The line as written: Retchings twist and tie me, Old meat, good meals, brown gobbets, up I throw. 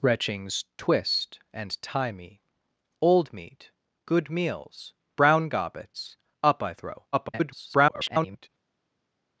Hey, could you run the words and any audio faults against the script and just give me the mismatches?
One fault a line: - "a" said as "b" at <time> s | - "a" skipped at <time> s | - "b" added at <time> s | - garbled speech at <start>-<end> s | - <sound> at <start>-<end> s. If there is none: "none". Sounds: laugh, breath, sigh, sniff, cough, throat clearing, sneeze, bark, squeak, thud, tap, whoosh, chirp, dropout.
- garbled speech at 7.1-8.5 s